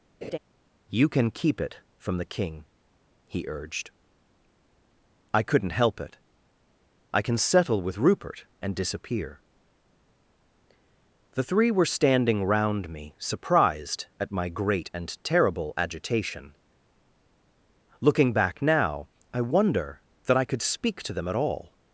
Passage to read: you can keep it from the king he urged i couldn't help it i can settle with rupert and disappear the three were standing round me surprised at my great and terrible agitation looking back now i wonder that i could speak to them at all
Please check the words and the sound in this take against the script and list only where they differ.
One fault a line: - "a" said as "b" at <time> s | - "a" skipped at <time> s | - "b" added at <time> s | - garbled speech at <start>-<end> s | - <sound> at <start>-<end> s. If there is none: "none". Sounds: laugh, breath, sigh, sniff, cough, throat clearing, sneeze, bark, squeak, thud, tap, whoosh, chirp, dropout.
- laugh at 0.2-0.4 s